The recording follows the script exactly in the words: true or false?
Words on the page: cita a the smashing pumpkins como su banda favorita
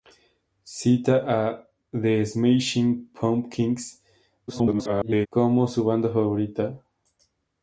false